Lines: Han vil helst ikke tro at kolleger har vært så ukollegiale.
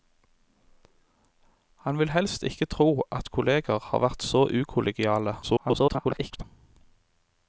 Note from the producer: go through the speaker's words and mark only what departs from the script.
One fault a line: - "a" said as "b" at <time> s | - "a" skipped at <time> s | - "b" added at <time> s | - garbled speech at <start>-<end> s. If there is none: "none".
- garbled speech at 5.4-6.4 s